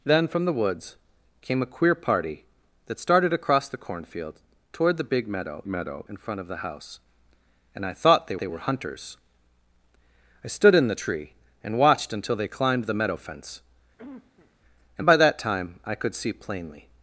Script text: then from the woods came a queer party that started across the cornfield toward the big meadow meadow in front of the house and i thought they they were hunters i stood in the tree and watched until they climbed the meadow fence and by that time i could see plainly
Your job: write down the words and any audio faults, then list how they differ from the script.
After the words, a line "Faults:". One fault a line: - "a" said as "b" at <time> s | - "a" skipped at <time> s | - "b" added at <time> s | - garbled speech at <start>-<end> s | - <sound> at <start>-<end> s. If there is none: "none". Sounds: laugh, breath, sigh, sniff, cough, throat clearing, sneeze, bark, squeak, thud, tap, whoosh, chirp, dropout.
then from the woods came a queer party that started across the cornfield toward the big meadow meadow in front of the house and i thought they they were hunters i stood in the tree and watched until they climbed the meadow fence and by that time i could see plainly
Faults:
- cough at 14.0-14.6 s